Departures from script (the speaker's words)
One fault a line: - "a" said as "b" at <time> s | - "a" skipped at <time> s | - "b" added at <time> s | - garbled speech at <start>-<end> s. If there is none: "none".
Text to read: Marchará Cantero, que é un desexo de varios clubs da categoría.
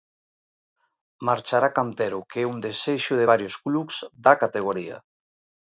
none